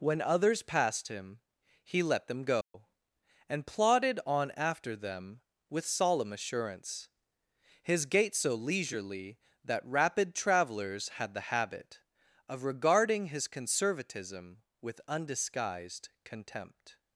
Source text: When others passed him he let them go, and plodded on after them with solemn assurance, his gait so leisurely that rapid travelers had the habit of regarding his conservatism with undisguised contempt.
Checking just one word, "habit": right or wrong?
right